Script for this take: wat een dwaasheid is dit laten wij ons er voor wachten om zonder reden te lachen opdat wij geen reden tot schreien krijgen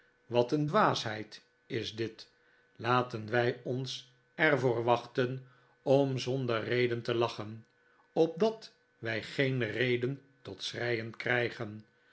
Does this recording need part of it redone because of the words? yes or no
no